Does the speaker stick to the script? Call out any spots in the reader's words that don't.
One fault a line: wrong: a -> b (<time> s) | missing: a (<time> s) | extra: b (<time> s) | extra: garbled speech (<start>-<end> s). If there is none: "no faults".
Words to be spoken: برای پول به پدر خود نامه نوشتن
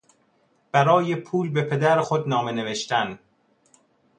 no faults